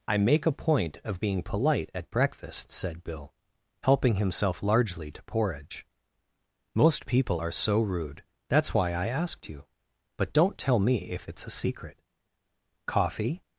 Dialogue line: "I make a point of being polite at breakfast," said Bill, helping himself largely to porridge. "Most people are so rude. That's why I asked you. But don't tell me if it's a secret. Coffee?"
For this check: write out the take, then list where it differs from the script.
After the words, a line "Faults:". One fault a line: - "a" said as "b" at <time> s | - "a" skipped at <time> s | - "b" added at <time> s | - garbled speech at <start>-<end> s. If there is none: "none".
"I make a point of being polite at breakfast," said Bill, helping himself largely to porridge. "Most people are so rude. That's why I asked you. But don't tell me if it's a secret. Coffee?"
Faults:
none